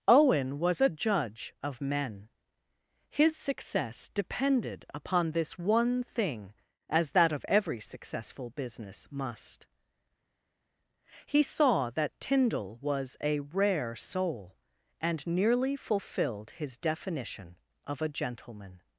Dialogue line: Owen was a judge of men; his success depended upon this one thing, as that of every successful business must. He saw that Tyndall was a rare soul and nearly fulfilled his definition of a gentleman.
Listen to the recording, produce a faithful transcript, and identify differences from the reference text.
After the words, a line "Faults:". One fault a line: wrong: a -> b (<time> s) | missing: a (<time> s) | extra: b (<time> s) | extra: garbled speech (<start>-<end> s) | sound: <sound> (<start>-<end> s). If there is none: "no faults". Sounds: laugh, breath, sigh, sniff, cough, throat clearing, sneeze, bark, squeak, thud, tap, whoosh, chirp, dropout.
Owen was a judge of men; his success depended upon this one thing, as that of every successful business must. He saw that Tyndall was a rare soul and nearly fulfilled his definition of a gentleman.
Faults:
no faults